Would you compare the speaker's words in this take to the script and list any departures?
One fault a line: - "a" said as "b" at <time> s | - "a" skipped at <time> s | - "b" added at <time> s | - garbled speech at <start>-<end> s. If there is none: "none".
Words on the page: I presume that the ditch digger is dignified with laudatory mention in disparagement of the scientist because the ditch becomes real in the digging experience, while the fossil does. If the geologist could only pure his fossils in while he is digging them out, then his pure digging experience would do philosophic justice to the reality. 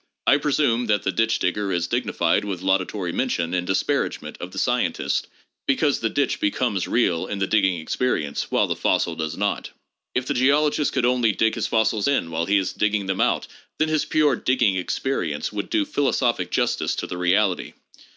- "not" added at 9.4 s
- "pure" said as "dig" at 11.3 s